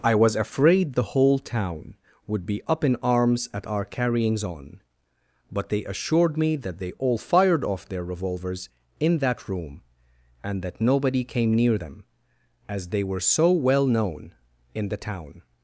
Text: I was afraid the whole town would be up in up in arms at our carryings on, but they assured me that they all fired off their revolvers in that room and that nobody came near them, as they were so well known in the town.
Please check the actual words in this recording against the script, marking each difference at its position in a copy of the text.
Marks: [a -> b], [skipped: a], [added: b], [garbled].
I was afraid the whole town would be up in [skipped: up in] arms at our carryings on, but they assured me that they all fired off their revolvers in that room and that nobody came near them, as they were so well known in the town.